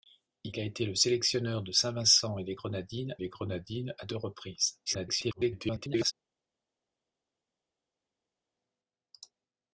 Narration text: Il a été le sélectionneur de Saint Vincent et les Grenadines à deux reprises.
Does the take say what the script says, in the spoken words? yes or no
no